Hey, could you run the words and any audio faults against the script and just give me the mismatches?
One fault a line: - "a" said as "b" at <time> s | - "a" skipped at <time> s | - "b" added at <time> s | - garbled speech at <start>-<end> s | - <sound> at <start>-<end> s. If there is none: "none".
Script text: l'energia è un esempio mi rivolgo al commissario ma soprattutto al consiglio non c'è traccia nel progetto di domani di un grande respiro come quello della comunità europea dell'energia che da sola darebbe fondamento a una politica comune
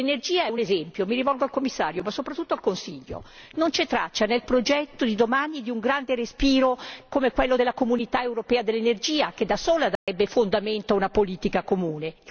- dropout at 10.0-10.1 s